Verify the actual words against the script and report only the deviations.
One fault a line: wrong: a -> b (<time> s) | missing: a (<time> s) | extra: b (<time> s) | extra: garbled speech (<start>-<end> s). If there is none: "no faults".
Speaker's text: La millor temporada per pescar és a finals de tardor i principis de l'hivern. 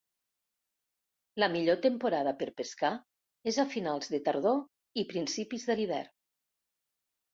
no faults